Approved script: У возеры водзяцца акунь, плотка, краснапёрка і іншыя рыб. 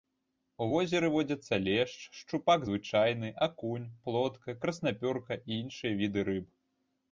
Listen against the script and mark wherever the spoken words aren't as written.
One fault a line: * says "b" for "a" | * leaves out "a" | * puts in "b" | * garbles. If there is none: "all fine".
* puts in "лешч шчупак звычайны"
* puts in "віды"